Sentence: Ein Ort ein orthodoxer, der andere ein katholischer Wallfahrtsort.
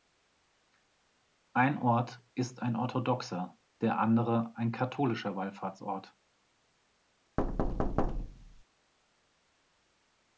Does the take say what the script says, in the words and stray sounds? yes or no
no